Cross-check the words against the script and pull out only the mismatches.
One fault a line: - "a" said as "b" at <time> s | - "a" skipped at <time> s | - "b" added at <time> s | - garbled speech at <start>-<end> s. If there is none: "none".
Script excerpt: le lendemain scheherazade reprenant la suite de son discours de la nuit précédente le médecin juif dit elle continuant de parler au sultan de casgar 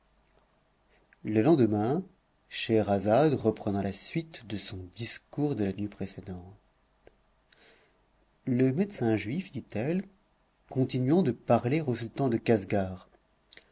none